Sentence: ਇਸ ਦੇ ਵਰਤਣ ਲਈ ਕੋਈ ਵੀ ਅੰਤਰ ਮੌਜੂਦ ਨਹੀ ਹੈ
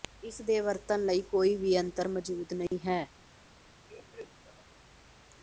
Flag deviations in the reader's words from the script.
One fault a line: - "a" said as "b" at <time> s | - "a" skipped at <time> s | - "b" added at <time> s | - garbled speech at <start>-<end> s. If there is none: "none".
none